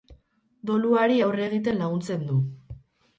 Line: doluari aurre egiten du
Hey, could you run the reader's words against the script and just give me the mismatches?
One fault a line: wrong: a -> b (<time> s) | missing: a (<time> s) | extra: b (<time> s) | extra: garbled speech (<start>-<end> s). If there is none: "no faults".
extra: laguntzen (1.8 s)